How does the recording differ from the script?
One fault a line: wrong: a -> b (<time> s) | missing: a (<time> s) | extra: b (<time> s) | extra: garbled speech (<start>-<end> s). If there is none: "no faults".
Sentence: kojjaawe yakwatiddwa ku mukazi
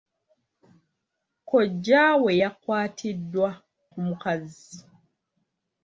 no faults